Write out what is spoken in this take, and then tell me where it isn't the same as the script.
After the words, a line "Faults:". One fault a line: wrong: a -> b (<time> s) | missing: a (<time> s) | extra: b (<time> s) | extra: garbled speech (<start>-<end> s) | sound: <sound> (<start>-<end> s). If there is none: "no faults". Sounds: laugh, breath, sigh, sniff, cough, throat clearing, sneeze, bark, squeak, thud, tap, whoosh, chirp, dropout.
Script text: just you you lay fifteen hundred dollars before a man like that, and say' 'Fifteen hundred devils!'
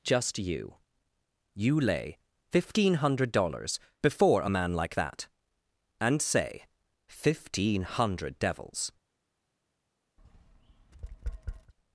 just you you lay fifteen hundred dollars before a man like that, and say' 'Fifteen hundred devils!'
Faults:
sound: tap (10.2-11.7 s)